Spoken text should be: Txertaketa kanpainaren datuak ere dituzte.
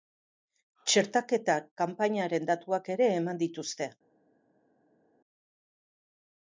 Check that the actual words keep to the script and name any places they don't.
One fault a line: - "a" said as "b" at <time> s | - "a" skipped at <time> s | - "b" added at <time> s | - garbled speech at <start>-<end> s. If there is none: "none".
- "eman" added at 3.2 s